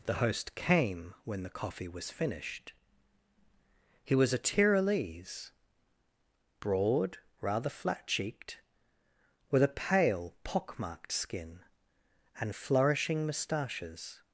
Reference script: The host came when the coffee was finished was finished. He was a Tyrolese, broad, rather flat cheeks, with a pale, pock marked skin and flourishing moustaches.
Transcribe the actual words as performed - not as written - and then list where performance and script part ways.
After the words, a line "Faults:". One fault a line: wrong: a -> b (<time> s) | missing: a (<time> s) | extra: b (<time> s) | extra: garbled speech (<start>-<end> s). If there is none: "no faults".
The host came when the coffee was finished. He was a Tyrolese, broad, rather flat cheeked, with a pale, pock marked skin and flourishing moustaches.
Faults:
missing: was finished (2.7 s)
wrong: cheeks -> cheeked (8.1 s)